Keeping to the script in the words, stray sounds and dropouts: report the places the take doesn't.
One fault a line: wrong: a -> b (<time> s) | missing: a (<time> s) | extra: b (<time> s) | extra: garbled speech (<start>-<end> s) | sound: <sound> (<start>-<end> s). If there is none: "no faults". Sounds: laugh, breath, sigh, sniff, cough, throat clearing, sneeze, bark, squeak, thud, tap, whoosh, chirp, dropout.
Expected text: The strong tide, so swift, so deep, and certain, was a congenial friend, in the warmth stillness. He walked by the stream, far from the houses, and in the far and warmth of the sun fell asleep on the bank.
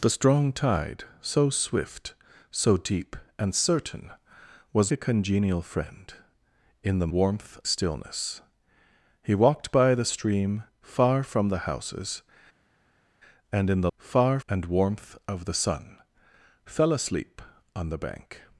no faults